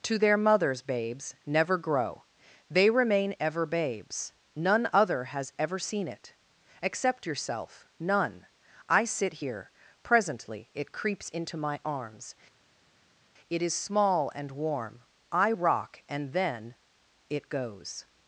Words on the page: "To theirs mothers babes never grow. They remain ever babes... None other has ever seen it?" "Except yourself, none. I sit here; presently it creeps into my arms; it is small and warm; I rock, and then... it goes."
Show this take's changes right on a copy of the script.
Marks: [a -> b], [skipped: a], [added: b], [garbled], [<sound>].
"To [theirs -> their] mothers babes never grow. They remain ever babes... None other has ever seen it?" "Except yourself, none. I sit here; presently it creeps into my arms; it is small and warm; I rock, and then... it goes."